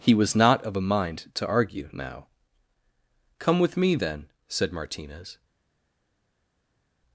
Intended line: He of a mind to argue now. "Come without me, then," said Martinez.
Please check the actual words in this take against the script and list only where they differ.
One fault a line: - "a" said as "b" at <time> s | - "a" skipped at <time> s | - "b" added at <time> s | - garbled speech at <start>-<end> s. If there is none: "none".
- "was not" added at 0.1 s
- "without" said as "with" at 3.6 s